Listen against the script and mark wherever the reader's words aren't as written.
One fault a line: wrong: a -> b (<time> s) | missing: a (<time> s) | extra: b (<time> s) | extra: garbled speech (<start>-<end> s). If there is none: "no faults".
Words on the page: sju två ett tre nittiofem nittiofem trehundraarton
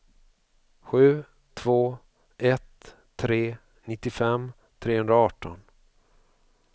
missing: nittiofem (4.5 s)